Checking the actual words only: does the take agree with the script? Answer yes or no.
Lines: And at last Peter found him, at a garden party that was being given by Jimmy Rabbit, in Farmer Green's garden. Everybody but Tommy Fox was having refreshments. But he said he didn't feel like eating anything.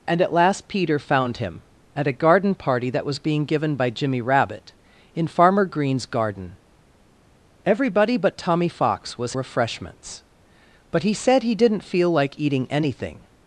no